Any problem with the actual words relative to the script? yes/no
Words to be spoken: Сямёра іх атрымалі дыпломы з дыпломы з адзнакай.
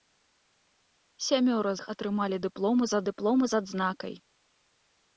no